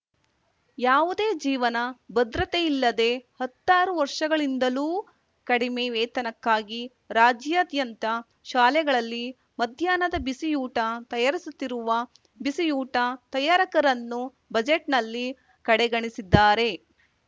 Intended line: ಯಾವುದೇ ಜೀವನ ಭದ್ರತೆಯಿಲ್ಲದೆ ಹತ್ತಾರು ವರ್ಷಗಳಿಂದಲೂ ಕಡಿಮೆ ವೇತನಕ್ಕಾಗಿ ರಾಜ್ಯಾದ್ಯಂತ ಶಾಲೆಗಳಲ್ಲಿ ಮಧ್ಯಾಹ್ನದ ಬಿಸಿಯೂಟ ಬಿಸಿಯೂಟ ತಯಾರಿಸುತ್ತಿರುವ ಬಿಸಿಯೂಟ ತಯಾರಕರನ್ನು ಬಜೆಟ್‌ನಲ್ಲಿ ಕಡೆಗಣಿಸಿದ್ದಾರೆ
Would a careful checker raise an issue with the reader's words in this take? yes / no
yes